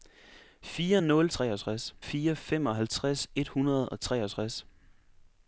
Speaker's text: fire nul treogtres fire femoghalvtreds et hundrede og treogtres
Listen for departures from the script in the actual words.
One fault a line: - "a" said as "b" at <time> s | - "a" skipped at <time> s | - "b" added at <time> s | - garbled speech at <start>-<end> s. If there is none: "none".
none